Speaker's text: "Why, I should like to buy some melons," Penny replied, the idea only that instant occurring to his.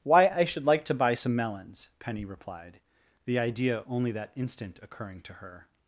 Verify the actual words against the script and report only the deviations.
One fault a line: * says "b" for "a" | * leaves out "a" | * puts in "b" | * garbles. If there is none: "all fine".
* says "her" for "his"